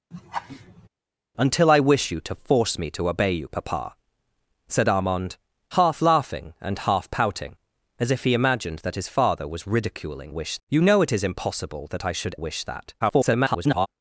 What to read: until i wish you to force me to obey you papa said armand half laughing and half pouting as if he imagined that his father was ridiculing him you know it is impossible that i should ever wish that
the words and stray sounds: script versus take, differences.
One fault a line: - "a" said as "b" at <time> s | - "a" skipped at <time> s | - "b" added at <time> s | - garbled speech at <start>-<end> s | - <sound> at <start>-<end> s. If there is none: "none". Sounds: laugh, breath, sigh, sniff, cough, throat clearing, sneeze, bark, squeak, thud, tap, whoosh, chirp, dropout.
- laugh at 0.1-0.9 s
- "him" said as "wish" at 10.3 s
- "ever" skipped at 12.3 s
- garbled speech at 13.0-13.9 s